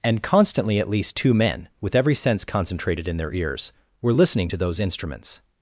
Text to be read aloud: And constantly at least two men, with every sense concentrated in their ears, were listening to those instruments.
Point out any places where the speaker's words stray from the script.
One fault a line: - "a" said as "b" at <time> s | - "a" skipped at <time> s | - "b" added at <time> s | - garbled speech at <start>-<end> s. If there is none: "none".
none